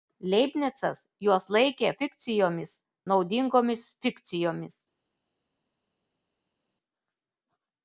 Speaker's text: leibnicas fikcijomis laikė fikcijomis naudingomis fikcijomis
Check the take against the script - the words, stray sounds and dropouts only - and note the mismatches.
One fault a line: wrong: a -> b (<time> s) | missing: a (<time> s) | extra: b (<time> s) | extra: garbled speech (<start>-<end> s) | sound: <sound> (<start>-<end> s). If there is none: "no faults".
wrong: fikcijomis -> juos (1.2 s)